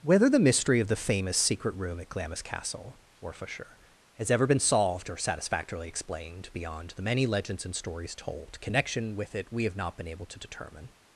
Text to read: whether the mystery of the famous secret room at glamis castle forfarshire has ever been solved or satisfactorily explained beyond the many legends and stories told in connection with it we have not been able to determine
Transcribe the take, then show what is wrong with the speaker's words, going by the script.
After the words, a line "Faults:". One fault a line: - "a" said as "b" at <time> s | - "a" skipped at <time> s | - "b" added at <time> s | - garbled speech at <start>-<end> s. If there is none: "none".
whether the mystery of the famous secret room at glamis castle forfarshire has ever been solved or satisfactorily explained beyond the many legends and stories told connection with it we have not been able to determine
Faults:
- "in" skipped at 8.6 s